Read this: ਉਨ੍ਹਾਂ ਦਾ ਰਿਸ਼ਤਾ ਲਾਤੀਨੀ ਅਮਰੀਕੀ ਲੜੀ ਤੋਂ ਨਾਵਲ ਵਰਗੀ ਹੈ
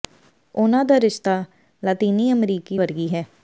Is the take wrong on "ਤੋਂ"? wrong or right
wrong